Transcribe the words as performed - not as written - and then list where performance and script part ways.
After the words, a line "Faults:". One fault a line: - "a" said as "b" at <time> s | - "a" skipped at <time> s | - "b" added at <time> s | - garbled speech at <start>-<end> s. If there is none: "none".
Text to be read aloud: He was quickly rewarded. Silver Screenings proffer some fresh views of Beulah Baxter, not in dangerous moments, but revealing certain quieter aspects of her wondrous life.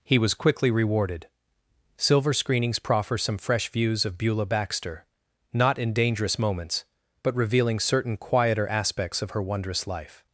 He was quickly rewarded. Silver Screenings proffer some fresh views of Beulah Baxter, not in dangerous moments, but revealing certain quieter aspects of her wondrous life.
Faults:
none